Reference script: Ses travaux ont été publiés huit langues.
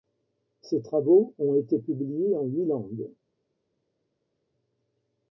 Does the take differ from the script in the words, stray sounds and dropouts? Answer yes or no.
yes